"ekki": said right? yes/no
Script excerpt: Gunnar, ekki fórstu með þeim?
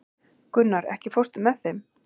yes